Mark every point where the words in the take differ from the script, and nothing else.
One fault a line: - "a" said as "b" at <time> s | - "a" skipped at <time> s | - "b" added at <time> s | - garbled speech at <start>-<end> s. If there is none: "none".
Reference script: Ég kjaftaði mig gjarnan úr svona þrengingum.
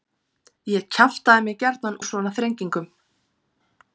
none